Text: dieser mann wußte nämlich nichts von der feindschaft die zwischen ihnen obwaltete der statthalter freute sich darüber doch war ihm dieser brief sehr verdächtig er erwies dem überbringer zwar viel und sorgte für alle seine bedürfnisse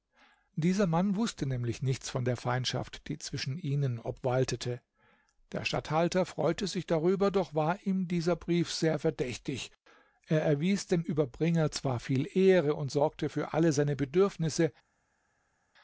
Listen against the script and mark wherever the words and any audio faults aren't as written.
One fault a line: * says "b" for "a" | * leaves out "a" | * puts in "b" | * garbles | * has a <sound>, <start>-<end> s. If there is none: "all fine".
* puts in "ehre"